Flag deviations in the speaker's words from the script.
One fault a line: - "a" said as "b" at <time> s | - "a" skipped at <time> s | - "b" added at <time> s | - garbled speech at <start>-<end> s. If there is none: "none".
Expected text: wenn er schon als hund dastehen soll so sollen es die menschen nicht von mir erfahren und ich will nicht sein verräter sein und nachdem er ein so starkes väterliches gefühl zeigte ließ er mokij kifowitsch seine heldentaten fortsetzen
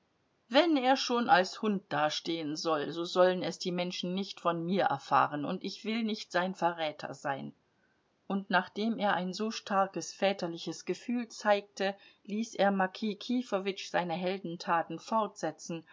none